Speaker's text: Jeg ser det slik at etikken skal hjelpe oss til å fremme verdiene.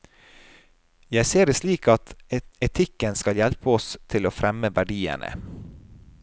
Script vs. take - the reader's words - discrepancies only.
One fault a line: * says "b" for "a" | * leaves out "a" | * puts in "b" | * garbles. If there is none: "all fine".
all fine